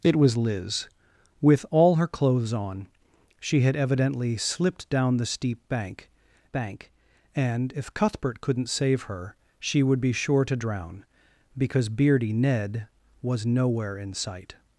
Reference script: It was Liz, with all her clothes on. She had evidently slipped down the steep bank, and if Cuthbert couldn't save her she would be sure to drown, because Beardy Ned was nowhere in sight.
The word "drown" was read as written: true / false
true